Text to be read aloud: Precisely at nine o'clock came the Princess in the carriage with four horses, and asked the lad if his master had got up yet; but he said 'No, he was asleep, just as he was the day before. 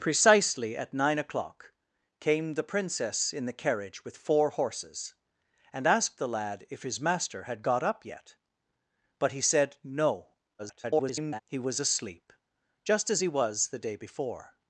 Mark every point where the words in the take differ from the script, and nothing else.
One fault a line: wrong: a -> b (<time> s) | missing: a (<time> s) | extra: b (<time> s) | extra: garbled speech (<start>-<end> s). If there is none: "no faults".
extra: garbled speech (10.6-11.4 s)